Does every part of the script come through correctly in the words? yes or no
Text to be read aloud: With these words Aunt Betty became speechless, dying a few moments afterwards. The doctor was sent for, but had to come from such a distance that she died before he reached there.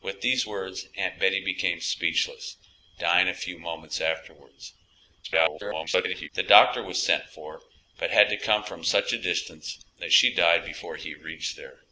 no